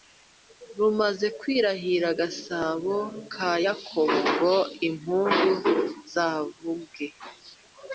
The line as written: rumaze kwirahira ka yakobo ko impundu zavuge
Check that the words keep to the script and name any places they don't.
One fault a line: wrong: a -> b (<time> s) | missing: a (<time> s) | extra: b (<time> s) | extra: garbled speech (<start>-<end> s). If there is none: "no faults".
extra: gasabo (2.2 s)
wrong: ko -> ngo (4.3 s)